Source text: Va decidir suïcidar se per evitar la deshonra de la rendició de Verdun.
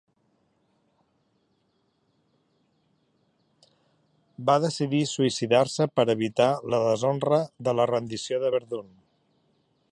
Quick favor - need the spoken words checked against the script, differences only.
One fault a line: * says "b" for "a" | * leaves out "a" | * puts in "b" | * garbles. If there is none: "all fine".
all fine